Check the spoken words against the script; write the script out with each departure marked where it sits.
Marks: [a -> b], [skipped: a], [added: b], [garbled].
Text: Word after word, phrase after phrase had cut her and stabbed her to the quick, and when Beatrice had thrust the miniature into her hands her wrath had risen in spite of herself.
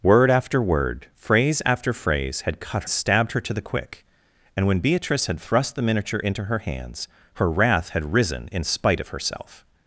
Word after word, phrase after phrase had cut [skipped: her and] stabbed her to the quick, and when Beatrice had thrust the miniature into her hands her wrath had risen in spite of herself.